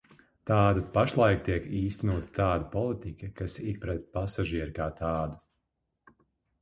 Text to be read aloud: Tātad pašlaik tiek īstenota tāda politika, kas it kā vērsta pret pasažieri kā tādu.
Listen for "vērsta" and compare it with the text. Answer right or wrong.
wrong